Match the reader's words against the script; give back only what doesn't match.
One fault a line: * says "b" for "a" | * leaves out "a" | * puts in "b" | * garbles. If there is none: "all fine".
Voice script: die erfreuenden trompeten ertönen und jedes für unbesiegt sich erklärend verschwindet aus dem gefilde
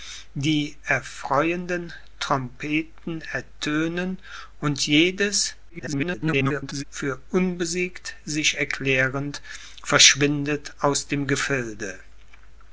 * garbles